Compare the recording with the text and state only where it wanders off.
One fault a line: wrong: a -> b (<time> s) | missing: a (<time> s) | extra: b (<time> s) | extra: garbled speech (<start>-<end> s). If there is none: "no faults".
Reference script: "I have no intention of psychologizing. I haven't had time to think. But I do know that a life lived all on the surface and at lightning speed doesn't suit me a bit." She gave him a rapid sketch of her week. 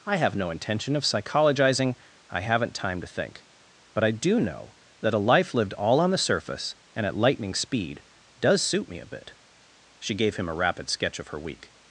missing: had (2.7 s)
wrong: doesn't -> does (8.4 s)